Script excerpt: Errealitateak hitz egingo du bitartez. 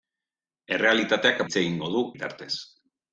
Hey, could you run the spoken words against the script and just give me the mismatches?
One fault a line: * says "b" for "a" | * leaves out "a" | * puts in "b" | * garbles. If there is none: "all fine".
all fine